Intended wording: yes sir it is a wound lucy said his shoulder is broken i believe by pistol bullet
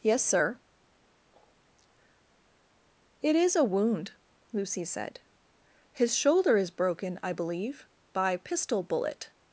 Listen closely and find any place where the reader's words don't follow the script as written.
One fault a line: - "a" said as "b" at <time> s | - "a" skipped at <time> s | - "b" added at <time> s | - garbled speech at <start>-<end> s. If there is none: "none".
none